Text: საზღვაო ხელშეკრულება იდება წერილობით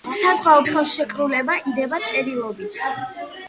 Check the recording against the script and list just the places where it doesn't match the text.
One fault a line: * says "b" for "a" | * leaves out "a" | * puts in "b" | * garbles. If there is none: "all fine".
all fine